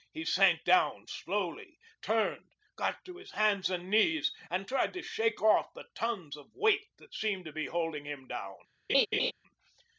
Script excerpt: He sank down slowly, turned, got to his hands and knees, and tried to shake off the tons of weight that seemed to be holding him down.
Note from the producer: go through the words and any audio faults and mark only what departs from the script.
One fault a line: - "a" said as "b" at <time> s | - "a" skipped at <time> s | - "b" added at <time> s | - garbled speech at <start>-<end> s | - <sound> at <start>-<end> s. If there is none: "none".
- laugh at 8.9-9.3 s